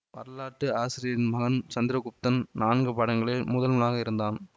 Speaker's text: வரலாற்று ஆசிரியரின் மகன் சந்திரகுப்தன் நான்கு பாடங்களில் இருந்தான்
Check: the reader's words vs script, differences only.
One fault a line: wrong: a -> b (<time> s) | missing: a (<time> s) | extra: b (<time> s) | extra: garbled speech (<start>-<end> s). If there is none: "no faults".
extra: முதல்வனாக (3.5 s)